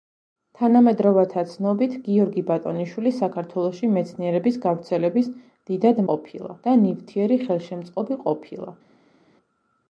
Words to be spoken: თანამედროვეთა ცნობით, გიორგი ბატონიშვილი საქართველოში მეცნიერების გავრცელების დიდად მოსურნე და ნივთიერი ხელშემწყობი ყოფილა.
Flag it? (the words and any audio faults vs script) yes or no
yes